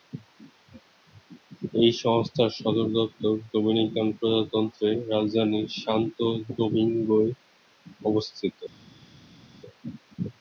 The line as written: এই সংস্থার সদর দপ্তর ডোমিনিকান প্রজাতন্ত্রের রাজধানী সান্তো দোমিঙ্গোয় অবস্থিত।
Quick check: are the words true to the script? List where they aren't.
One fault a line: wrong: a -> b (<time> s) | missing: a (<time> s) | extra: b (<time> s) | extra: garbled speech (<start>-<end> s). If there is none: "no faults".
no faults